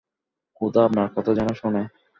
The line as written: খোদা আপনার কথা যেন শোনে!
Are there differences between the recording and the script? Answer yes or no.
no